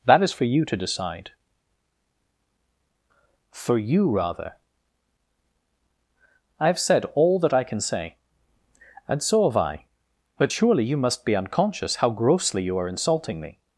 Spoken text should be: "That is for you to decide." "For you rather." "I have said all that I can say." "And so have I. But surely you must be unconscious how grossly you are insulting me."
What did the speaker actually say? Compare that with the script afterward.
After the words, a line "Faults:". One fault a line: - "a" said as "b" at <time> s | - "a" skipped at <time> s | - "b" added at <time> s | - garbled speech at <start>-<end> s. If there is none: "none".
"That is for you to decide." "For you rather." "I have said all that I can say." "And so have I. But surely you must be unconscious how grossly you are insulting me."
Faults:
none